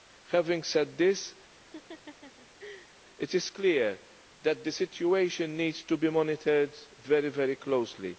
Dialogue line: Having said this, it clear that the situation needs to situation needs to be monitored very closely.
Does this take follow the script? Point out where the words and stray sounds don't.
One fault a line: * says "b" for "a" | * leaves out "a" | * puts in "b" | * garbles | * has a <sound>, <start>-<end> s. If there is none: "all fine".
* has a laugh, 1.5-3.0 s
* puts in "is"
* leaves out "situation needs to"